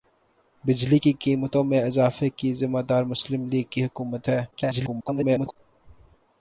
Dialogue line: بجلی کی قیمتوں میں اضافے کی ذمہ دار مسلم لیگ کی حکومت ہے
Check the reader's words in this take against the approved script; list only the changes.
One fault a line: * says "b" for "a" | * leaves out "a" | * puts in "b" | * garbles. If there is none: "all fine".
* garbles